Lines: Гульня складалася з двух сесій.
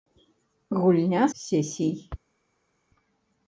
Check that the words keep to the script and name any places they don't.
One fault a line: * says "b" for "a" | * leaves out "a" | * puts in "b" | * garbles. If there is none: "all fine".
* leaves out "складалася з двух"